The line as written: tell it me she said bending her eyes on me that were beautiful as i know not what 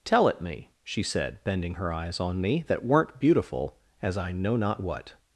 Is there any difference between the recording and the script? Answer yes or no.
yes